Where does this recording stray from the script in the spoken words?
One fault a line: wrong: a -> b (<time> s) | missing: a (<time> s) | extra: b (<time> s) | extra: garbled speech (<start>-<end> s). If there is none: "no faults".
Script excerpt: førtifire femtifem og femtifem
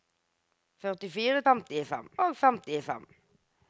no faults